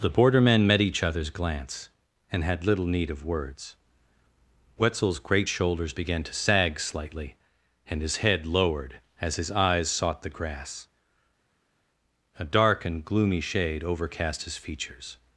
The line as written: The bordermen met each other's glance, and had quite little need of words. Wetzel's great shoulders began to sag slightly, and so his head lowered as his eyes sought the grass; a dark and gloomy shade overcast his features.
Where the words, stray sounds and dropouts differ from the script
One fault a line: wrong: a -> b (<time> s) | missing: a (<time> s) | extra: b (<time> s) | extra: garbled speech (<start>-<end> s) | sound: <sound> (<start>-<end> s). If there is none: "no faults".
missing: quite (2.6 s)
missing: so (8.0 s)